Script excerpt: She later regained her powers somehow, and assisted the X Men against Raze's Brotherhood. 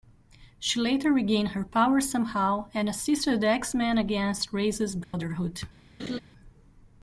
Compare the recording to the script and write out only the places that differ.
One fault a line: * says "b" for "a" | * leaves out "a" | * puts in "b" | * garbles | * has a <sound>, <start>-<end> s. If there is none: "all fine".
* has a dropout, 5.0-5.1 s
* has a laugh, 6.0-6.2 s